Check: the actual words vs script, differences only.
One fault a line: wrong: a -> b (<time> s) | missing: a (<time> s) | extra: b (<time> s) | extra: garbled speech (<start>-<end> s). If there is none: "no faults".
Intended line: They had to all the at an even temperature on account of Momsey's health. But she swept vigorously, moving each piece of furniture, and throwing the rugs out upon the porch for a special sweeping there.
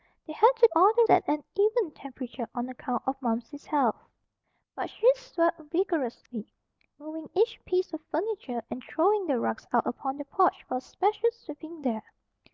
no faults